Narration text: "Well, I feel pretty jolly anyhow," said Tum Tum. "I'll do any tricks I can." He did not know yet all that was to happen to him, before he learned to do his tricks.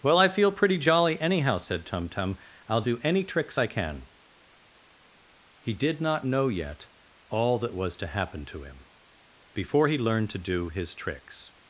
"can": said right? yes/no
yes